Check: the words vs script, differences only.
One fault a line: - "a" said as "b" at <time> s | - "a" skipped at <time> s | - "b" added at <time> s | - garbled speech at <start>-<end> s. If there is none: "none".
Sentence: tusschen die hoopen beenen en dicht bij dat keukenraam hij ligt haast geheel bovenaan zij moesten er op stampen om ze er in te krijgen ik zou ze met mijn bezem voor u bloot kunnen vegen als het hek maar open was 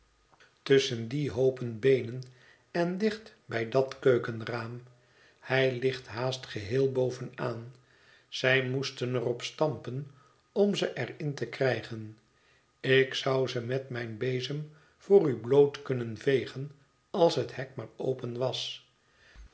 none